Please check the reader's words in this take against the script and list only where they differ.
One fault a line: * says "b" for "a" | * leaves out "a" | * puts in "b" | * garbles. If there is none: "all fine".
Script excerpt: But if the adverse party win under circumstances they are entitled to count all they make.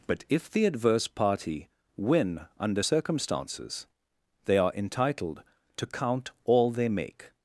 all fine